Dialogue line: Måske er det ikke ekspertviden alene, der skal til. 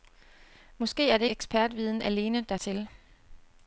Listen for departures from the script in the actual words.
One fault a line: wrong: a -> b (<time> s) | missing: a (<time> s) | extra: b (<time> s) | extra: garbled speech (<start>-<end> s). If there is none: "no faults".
missing: ikke (1.2 s)
missing: skal (2.6 s)